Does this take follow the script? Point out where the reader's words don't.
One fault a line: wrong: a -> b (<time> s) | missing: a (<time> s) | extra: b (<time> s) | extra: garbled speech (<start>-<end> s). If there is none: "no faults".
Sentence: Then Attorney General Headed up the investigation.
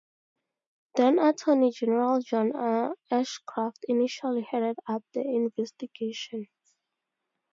extra: John Ashcroft initially (2.2 s)